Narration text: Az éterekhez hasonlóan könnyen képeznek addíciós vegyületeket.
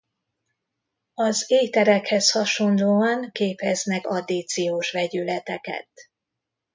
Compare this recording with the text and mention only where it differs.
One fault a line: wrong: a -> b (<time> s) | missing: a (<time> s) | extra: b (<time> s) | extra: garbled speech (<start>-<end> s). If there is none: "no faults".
missing: könnyen (3.3 s)